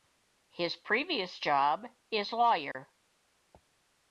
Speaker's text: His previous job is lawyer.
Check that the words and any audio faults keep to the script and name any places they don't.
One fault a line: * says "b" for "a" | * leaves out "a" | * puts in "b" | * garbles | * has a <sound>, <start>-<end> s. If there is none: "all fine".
* has a dropout, 2.7-2.7 s